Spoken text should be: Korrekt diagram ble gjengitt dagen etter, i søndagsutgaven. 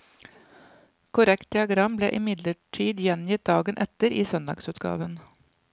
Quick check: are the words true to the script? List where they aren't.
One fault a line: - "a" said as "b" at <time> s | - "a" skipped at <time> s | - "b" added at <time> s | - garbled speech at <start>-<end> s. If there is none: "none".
- "imidlertid" added at 2.2 s